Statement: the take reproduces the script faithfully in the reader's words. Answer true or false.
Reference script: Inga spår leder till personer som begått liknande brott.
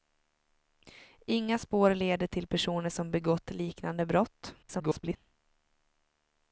false